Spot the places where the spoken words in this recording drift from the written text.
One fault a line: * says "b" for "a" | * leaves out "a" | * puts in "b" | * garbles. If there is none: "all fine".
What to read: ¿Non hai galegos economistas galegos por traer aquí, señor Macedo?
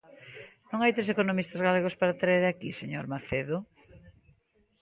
* says "tres" for "galegos"
* says "para" for "por"